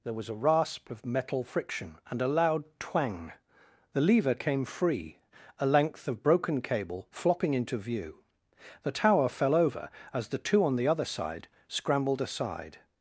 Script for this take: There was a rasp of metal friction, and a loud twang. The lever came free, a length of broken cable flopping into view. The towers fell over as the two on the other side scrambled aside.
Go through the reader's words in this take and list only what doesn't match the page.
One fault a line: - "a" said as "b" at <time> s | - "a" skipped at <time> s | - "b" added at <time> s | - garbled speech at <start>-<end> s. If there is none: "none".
- "towers" said as "tower" at 8.9 s